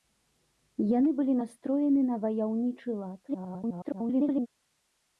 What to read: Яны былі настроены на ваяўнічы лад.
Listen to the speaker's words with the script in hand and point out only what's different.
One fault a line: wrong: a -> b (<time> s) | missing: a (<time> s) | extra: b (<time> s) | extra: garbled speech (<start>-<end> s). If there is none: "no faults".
extra: garbled speech (3.3-4.5 s)